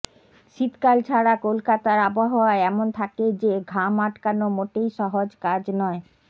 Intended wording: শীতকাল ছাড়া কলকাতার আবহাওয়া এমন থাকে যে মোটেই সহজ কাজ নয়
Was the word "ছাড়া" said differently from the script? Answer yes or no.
no